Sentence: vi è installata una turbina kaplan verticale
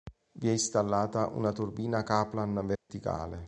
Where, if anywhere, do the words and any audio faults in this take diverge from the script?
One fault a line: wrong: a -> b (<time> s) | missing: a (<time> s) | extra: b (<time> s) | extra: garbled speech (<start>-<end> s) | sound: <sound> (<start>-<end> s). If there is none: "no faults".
sound: dropout (2.8-2.9 s)